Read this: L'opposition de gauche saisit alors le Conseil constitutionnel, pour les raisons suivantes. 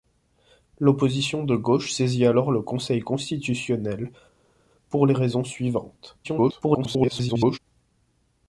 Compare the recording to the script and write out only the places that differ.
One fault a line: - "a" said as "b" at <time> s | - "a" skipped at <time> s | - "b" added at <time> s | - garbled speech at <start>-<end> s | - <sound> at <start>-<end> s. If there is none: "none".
- garbled speech at 6.2-7.6 s